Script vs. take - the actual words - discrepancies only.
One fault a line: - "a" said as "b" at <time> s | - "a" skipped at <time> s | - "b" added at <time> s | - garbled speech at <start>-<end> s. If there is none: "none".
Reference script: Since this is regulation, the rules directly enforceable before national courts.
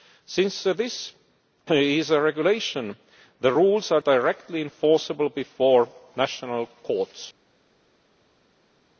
- "a" added at 2.1 s
- "are" added at 3.9 s